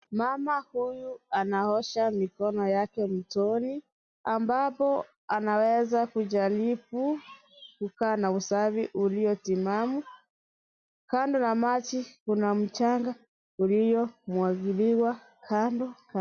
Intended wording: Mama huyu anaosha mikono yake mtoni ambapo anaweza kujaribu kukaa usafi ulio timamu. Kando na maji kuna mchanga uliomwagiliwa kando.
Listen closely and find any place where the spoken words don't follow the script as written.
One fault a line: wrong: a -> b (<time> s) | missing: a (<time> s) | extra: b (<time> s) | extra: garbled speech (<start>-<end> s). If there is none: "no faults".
extra: na (8.2 s)